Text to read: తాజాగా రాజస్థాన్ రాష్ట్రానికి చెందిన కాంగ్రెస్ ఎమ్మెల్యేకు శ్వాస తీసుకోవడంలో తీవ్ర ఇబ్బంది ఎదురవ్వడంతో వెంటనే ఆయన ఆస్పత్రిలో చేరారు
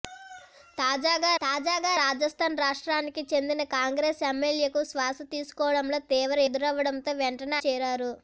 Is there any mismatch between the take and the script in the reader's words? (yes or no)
yes